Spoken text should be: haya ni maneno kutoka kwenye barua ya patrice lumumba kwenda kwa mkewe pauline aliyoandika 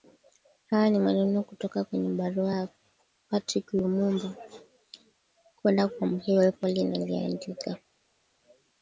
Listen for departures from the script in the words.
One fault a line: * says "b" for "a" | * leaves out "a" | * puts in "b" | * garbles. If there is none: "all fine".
all fine